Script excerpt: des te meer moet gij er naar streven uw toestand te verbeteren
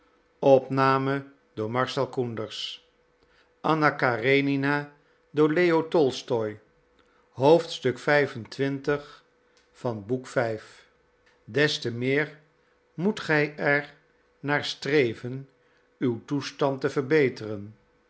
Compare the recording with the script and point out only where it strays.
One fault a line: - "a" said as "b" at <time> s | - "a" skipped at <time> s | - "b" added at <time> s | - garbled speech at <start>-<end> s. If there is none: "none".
none